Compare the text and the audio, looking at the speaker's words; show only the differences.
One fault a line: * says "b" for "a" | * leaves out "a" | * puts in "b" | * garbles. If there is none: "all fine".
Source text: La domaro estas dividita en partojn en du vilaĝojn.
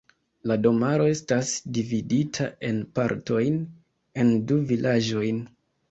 all fine